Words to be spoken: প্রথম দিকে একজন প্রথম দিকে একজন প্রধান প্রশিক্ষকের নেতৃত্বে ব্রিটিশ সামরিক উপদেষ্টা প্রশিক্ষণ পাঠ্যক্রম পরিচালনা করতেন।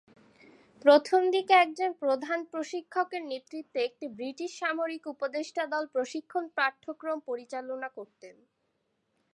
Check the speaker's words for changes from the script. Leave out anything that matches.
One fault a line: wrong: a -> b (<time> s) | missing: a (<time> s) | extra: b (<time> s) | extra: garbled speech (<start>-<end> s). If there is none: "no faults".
missing: প্রথম দিকে একজন (1.9 s)
extra: একটি (3.8 s)
extra: দল (5.7 s)